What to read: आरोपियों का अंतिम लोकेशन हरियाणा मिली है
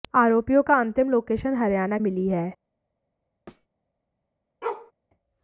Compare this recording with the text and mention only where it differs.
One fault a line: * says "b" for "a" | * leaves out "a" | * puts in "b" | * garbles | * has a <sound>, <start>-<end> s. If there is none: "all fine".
* has a thud, 3.5-3.7 s
* has a bark, 4.6-4.9 s